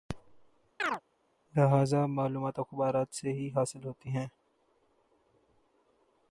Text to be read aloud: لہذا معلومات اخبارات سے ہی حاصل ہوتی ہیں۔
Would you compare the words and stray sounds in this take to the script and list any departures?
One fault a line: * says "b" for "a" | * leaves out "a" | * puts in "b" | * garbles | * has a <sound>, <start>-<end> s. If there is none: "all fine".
* has a chirp, 0.8-1.0 s